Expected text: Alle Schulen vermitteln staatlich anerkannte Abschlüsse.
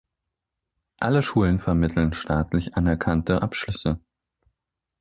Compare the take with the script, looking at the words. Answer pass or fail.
pass